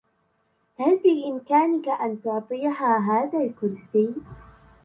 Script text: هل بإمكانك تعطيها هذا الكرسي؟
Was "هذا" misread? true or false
false